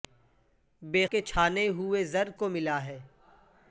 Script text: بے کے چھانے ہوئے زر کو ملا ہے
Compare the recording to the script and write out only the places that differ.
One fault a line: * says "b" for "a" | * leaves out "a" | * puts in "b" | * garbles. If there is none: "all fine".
all fine